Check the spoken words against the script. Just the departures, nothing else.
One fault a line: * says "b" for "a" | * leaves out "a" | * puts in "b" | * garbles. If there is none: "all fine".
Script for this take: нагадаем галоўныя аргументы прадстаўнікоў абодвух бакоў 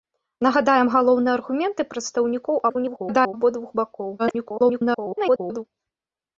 * garbles
* garbles